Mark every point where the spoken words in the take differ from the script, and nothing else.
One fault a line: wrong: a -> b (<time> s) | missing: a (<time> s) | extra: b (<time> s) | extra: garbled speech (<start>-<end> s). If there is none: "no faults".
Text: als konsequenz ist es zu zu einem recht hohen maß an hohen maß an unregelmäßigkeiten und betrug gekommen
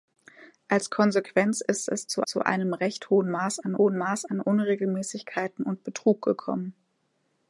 no faults